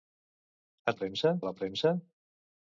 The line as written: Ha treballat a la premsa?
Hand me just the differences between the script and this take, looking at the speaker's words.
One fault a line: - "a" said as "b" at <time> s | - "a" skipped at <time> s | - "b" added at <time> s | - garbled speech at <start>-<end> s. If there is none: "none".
- "treballat" said as "premsa" at 1.0 s